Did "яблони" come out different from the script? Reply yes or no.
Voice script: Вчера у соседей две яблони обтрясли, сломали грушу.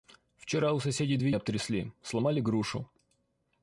yes